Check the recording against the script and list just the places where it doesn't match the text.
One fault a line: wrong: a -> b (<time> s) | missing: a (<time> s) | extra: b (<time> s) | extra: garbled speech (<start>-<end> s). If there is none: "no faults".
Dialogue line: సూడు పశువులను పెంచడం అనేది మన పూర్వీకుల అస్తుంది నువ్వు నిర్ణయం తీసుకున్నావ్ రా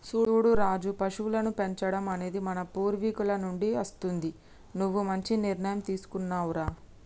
extra: రాజు (0.6 s)
extra: నుండి (3.4 s)
extra: మంచి (5.0 s)